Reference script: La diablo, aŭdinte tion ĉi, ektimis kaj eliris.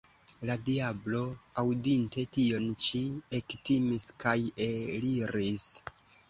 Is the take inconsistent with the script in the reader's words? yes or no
no